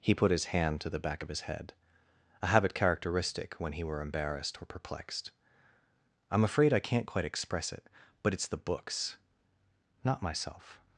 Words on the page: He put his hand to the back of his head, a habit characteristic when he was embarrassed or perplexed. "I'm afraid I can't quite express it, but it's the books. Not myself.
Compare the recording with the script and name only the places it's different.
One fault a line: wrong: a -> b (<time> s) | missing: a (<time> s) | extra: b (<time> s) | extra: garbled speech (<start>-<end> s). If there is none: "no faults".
wrong: was -> were (3.8 s)